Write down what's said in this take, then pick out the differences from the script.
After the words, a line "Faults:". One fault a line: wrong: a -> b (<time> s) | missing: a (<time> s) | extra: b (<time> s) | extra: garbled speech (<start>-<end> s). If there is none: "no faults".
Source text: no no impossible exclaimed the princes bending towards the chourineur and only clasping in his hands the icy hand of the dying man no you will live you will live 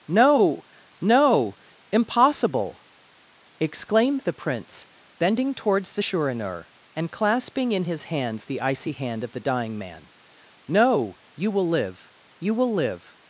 no no impossible exclaimed the prince bending towards the chourineur and clasping in his hands the icy hand of the dying man no you will live you will live
Faults:
wrong: princes -> prince (4.3 s)
missing: only (7.1 s)